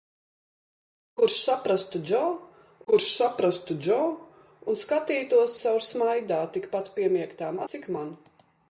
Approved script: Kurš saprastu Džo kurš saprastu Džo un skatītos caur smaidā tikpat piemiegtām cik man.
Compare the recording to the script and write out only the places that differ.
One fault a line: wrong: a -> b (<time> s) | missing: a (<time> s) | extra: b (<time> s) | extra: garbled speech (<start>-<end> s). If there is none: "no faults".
no faults